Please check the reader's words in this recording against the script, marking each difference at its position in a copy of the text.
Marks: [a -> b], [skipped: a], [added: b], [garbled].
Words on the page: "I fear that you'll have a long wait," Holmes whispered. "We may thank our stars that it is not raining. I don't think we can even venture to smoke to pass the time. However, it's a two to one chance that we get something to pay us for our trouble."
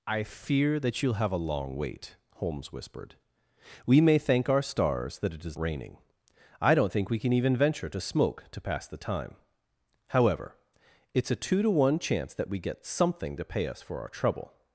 "I fear that you'll have a long wait," Holmes whispered. "We may thank our stars that it is [skipped: not] raining. I don't think we can even venture to smoke to pass the time. However, it's a two to one chance that we get something to pay us for our trouble."